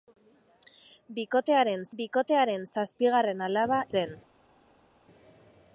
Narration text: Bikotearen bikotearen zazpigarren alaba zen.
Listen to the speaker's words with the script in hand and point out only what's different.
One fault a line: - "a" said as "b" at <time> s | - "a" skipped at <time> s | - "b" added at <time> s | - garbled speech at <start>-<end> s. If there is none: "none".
none